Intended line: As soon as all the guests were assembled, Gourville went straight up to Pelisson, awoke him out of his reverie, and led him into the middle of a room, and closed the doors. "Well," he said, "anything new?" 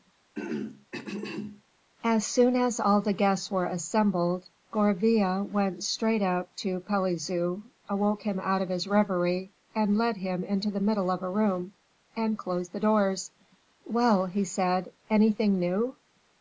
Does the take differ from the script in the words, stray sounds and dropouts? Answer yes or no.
yes